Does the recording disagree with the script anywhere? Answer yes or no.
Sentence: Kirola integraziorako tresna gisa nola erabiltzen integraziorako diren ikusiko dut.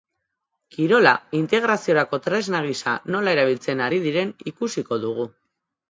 yes